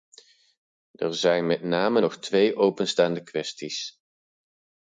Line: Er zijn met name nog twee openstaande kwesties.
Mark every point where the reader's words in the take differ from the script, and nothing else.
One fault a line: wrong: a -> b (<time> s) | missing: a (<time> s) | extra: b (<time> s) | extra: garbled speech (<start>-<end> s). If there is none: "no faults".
no faults